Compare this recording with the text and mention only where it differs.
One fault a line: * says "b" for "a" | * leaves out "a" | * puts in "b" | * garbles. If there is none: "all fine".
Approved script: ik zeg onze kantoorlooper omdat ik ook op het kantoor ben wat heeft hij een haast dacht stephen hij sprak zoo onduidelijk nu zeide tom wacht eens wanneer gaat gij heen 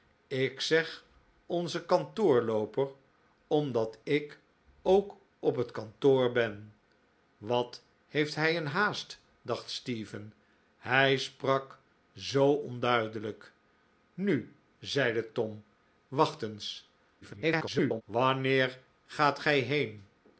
* garbles